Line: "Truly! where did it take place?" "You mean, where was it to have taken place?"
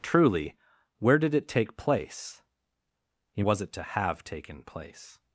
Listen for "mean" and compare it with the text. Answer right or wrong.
wrong